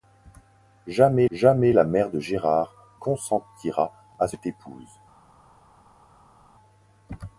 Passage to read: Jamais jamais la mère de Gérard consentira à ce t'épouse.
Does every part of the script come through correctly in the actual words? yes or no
yes